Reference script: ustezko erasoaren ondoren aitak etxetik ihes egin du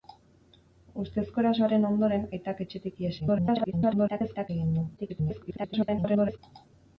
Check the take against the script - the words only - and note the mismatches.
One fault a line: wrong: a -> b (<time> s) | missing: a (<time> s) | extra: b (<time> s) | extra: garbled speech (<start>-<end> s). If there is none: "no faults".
extra: garbled speech (3.2-4.5 s)
extra: garbled speech (5.0-6.4 s)